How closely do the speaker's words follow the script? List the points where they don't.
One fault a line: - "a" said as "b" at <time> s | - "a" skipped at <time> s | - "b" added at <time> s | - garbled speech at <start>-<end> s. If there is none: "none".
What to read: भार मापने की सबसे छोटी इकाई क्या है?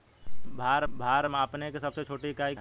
- "भार" added at 0.9 s
- "क्या" skipped at 2.5 s